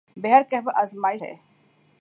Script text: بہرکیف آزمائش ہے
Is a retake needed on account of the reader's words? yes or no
no